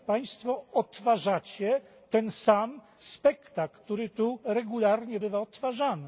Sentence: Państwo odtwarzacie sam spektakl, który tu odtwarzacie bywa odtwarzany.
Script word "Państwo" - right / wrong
right